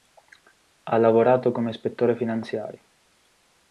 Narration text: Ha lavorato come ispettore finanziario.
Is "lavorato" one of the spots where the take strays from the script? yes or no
no